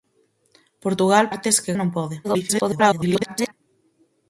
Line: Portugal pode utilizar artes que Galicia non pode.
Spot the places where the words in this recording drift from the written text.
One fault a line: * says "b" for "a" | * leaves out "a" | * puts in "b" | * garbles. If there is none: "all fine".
* leaves out "pode utilizar"
* leaves out "Galicia"
* garbles